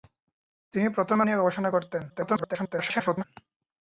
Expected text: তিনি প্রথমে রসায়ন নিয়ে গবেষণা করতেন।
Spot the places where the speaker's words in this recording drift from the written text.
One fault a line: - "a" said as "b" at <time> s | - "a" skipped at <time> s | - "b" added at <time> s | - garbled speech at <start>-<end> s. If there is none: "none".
- "রসায়ন" skipped at 1.2 s
- garbled speech at 2.1-3.2 s